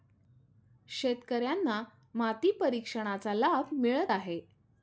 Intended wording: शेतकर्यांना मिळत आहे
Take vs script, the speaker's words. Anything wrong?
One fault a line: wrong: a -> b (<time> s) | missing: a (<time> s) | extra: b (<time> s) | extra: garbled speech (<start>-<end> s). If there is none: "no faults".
extra: माती परीक्षणाचा लाभ (2.1 s)